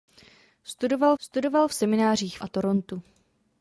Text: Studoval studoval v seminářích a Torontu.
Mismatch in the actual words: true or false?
false